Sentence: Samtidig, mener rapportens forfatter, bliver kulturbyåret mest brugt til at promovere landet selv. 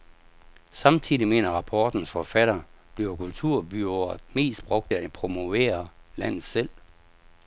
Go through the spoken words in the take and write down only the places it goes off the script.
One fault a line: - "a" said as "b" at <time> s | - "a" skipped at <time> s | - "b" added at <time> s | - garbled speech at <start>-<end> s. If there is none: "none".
- "til" skipped at 4.9 s